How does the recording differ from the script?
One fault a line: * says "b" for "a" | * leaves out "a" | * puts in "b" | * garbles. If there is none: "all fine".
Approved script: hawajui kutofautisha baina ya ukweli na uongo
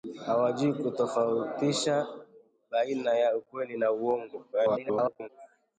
* garbles